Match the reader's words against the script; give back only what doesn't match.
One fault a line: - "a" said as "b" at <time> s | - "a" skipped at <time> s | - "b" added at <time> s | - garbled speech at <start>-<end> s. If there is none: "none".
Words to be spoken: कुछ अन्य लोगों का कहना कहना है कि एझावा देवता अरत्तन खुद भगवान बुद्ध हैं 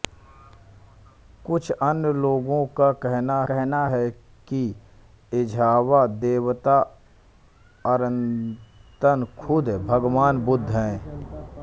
none